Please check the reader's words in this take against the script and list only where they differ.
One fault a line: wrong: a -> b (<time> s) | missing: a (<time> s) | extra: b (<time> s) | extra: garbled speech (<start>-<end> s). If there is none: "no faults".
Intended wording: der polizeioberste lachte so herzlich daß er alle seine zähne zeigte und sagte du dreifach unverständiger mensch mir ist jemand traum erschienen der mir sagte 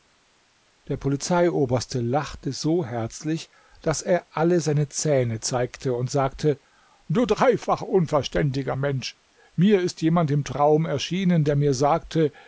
extra: im (10.3 s)